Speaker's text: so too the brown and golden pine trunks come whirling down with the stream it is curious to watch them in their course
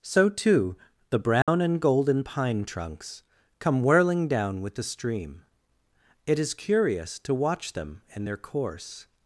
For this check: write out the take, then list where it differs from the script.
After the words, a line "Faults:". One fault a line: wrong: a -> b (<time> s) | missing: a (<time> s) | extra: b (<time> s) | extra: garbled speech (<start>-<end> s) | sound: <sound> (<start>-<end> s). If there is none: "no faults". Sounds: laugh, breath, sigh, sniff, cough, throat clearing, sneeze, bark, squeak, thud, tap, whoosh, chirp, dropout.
so too the brown and golden pine trunks come whirling down with the stream it is curious to watch them in their course
Faults:
sound: dropout (1.4-1.5 s)